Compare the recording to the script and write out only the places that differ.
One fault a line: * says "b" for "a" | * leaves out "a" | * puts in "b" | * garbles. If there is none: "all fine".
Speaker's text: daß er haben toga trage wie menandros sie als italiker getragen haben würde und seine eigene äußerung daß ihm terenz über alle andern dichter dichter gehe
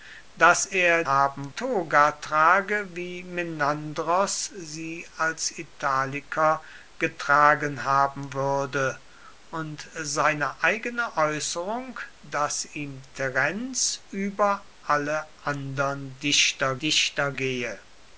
all fine